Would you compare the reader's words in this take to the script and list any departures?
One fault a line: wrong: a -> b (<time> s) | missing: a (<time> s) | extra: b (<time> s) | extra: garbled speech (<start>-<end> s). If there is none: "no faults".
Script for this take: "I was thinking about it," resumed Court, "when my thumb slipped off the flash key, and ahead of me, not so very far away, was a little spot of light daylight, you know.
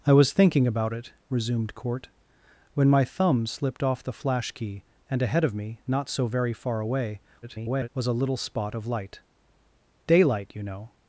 extra: garbled speech (7.4-7.9 s)